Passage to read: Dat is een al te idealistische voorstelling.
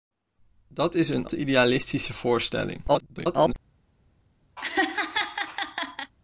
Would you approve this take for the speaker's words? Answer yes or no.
no